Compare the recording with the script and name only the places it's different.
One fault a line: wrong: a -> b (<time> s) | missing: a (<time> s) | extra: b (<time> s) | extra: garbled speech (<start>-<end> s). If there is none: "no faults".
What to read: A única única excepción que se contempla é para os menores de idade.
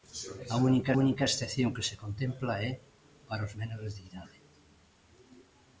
no faults